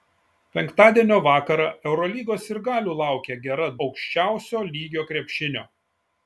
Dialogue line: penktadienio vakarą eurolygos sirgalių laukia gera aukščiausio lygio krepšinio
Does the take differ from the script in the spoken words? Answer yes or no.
no